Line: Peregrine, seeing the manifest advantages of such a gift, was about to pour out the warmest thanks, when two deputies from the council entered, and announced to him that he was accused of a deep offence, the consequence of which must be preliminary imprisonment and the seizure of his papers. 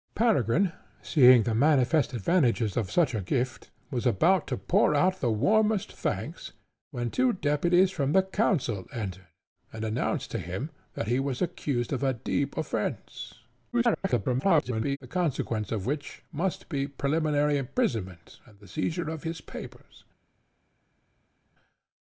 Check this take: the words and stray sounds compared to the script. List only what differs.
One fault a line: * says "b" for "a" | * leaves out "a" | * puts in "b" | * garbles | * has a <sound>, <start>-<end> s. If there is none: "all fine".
* garbles